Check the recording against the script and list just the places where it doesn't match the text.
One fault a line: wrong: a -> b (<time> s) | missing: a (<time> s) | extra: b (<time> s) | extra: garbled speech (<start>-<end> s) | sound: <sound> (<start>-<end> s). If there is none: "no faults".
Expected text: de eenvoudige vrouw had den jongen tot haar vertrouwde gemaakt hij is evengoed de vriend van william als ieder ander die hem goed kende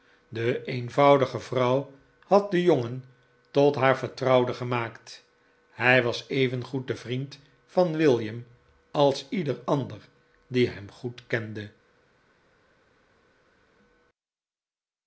wrong: is -> was (6.0 s)